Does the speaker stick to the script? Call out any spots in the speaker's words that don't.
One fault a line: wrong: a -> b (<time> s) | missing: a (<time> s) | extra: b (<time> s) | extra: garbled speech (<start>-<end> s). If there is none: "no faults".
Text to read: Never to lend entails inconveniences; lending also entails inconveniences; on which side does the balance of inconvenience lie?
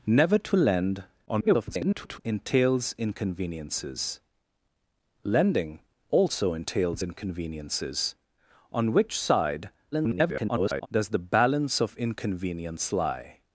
extra: garbled speech (1.3-2.2 s)
extra: garbled speech (9.9-10.9 s)